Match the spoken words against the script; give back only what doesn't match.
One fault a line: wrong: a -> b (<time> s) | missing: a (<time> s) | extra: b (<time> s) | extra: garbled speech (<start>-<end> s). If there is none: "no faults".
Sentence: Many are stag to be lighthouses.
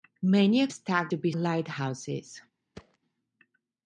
no faults